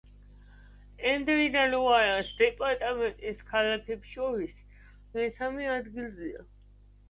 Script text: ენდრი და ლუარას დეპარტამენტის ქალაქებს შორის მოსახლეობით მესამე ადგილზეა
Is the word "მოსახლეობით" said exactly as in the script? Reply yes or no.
no